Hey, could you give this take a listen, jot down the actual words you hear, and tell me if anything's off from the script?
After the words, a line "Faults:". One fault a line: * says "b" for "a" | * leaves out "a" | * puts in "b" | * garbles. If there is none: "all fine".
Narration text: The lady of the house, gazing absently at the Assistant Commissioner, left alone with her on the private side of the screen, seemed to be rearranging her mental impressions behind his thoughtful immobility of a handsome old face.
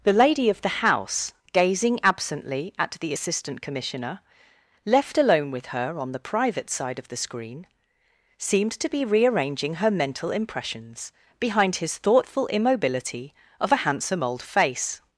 The lady of the house, gazing absently at the Assistant Commissioner, left alone with her on the private side of the screen, seemed to be rearranging her mental impressions behind his thoughtful immobility of a handsome old face.
Faults:
all fine